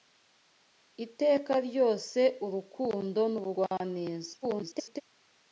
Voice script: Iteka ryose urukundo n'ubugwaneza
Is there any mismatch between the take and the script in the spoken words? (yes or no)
yes